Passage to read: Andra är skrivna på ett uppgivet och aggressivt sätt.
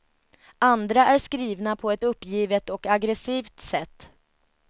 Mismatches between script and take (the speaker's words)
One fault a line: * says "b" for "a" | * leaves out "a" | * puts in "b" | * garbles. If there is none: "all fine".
all fine